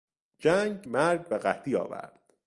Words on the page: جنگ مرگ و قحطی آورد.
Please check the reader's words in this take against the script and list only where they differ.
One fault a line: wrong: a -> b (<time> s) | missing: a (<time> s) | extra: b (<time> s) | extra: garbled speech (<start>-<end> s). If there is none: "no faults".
no faults